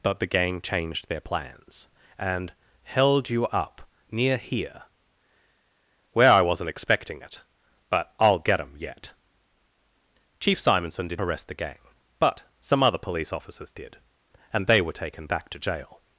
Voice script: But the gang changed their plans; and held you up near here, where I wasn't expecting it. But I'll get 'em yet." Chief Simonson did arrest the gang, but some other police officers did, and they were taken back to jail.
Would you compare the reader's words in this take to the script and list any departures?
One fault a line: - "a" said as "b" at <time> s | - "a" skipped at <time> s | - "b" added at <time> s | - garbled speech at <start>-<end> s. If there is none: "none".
none